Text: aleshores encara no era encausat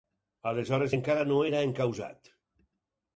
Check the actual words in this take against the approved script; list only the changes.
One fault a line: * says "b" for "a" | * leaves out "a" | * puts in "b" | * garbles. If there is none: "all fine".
all fine